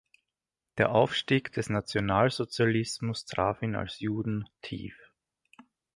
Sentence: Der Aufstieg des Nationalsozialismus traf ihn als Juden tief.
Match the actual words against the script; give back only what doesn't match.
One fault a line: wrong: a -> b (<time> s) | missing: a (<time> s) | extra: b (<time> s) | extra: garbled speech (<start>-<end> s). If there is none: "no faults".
no faults